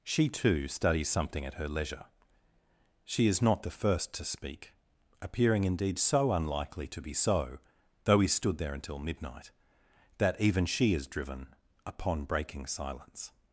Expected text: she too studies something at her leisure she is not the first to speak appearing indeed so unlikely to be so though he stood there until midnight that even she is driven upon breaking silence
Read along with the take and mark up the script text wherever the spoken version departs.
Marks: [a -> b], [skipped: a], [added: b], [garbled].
she too studies something at her leisure she is not the first to speak appearing indeed so unlikely to be so though he stood there until midnight that even she is driven upon breaking silence